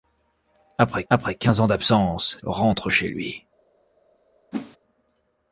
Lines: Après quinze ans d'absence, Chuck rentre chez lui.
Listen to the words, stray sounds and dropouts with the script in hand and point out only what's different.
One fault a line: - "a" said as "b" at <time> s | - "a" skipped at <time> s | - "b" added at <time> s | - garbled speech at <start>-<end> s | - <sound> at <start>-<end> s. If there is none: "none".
- "après" added at 1.1 s
- "Chuck" skipped at 2.4 s
- whoosh at 4.5-4.8 s